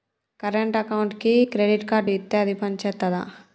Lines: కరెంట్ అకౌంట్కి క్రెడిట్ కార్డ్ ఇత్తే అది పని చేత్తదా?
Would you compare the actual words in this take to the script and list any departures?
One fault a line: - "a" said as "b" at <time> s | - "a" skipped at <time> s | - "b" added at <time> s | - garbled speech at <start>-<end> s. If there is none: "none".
none